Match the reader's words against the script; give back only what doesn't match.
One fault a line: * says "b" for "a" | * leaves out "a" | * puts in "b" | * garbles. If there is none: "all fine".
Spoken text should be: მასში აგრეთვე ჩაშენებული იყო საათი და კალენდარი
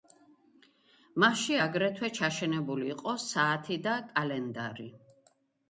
all fine